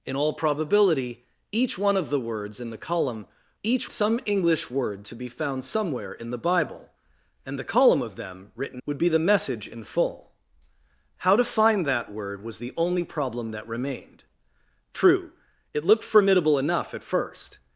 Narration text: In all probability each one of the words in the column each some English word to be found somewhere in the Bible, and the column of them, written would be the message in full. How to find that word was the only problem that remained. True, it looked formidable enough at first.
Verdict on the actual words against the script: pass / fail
pass